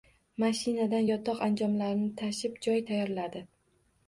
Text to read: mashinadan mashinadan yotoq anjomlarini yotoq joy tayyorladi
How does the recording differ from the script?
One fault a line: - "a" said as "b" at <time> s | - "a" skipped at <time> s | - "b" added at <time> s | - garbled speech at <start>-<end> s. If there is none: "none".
- "mashinadan" skipped at 1.0 s
- "yotoq" said as "tashib" at 2.2 s